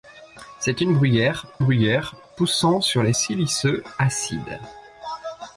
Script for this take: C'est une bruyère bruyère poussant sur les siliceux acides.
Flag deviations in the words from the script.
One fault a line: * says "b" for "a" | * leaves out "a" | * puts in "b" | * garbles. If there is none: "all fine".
all fine